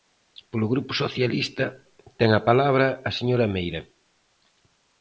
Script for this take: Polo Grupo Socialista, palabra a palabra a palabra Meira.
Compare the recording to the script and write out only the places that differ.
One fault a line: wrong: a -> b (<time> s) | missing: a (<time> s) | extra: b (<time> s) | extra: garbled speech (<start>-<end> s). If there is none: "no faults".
wrong: palabra -> ten (2.2 s)
wrong: palabra -> señora (3.2 s)